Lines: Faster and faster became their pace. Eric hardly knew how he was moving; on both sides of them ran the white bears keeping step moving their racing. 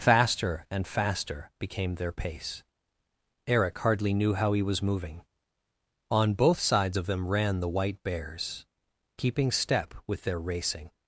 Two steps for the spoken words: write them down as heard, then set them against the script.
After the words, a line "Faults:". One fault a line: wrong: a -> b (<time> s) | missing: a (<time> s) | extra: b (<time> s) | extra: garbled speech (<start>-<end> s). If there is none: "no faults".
Faster and faster became their pace. Eric hardly knew how he was moving; on both sides of them ran the white bears keeping step with their racing.
Faults:
wrong: moving -> with (10.1 s)